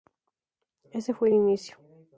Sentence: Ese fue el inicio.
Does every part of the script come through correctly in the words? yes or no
yes